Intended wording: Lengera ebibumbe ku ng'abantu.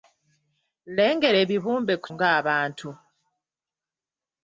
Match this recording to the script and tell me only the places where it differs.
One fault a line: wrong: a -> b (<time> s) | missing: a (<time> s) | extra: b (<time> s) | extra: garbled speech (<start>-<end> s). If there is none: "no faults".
no faults